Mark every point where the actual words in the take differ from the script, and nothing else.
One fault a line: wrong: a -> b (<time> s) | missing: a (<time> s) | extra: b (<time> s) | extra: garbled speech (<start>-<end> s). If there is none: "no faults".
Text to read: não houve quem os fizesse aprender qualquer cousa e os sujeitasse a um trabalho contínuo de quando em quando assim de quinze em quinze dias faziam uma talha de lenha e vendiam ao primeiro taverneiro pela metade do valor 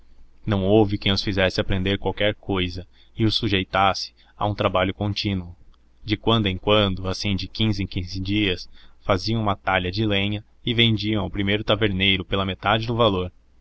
no faults